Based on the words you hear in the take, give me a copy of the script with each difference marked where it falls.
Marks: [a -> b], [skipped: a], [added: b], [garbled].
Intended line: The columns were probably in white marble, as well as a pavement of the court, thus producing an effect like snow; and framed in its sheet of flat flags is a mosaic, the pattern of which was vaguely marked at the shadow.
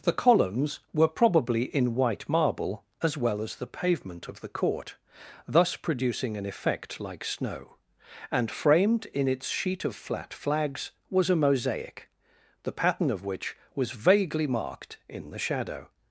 The columns were probably in white marble, as well as [a -> the] pavement of the court, thus producing an effect like snow; and framed in its sheet of flat flags [is -> was] a mosaic, the pattern of which was vaguely marked [at -> in] the shadow.